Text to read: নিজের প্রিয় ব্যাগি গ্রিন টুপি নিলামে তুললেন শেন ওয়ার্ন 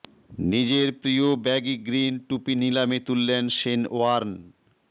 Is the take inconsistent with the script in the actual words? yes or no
no